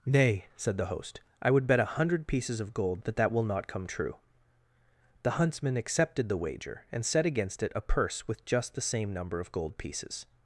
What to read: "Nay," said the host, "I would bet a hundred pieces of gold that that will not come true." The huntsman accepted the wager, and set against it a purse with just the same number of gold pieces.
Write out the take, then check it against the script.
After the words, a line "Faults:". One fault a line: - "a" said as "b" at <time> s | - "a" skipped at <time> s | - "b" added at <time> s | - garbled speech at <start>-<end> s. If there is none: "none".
"Nay," said the host, "I would bet a hundred pieces of gold that that will not come true." The huntsman accepted the wager, and set against it a purse with just the same number of gold pieces.
Faults:
none